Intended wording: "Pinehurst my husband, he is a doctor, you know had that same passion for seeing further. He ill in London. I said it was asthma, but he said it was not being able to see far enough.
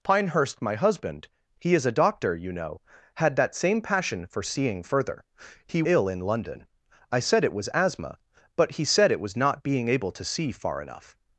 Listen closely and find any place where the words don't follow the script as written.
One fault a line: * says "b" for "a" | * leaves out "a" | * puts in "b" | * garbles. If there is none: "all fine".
all fine